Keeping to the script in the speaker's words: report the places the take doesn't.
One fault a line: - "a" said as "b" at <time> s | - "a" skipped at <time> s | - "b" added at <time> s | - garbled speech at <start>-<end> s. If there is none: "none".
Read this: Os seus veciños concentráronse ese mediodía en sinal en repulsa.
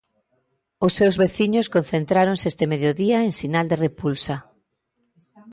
- "ese" said as "este" at 2.5 s
- "en" said as "de" at 3.7 s